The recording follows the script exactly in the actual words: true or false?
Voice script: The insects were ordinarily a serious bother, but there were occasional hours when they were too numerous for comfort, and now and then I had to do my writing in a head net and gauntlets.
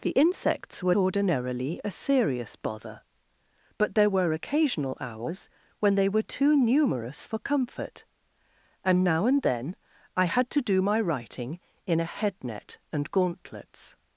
true